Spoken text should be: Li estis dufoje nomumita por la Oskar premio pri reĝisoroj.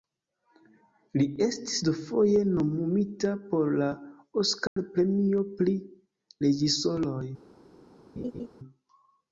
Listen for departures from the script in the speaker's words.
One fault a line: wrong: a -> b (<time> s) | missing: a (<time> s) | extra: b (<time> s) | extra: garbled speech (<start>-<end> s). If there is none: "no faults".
no faults